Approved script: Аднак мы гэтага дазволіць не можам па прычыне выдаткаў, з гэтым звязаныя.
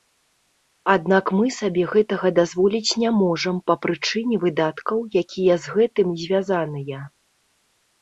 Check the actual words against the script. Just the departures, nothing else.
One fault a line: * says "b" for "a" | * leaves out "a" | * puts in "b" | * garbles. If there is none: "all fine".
* puts in "сабе"
* puts in "якія"